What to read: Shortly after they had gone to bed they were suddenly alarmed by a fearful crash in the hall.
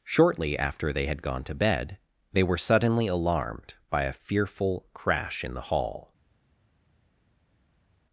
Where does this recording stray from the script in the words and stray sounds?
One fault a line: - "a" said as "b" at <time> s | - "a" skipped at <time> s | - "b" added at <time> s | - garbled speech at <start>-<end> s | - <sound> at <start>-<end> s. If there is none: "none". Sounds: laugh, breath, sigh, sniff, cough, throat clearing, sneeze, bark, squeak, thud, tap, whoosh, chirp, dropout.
none